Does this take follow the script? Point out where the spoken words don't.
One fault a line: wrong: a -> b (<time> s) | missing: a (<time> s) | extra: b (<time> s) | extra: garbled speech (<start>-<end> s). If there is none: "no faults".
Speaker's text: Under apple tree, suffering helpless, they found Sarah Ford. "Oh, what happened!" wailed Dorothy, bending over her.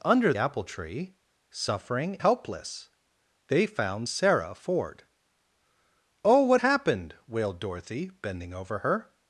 no faults